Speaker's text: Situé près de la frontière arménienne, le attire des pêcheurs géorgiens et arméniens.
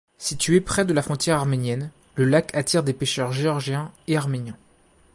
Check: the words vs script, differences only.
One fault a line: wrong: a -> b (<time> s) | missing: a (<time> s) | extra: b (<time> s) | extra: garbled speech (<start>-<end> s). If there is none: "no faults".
extra: lac (2.2 s)